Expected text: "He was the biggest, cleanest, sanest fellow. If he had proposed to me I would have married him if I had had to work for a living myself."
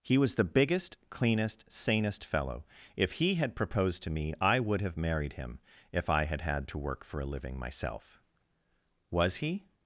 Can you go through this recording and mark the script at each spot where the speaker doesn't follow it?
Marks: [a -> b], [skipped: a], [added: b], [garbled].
"He was the biggest, cleanest, sanest fellow. If he had proposed to me I would have married him if I had had to work for a living myself." [added: Was he]